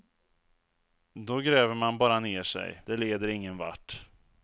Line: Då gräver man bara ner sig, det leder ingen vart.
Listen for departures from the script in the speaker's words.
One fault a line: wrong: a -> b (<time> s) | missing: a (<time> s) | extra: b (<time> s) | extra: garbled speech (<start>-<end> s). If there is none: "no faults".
no faults